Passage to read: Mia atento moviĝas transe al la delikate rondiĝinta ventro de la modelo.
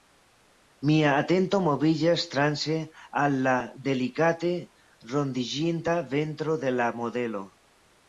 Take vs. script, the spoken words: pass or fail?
pass